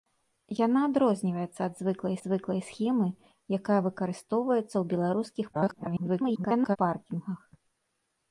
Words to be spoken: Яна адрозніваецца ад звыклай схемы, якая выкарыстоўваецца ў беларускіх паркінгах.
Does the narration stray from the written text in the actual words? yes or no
yes